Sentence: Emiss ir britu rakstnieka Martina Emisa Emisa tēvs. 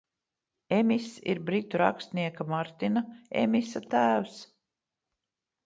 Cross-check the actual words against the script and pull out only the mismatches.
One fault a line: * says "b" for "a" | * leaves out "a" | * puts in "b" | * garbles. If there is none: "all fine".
* leaves out "Emisa"